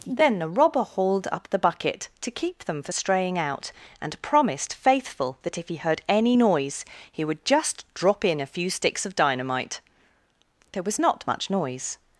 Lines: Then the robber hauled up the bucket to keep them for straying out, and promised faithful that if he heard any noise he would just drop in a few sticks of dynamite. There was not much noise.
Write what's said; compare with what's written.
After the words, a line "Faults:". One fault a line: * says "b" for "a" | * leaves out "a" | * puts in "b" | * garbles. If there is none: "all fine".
Then the robber hauled up the bucket to keep them for straying out, and promised faithful that if he heard any noise he would just drop in a few sticks of dynamite. There was not much noise.
Faults:
all fine